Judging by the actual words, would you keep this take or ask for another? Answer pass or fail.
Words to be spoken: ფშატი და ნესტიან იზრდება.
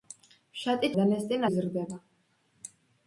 pass